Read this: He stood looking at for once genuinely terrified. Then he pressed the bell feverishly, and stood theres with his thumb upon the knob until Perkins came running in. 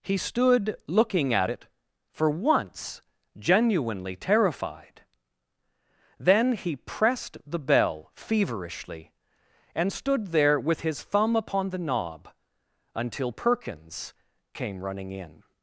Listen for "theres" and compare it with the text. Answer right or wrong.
wrong